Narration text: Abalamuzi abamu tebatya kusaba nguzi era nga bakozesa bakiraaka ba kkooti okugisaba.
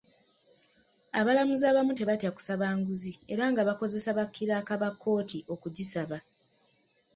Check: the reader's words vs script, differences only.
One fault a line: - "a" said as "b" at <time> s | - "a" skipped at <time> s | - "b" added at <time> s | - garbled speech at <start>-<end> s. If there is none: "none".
none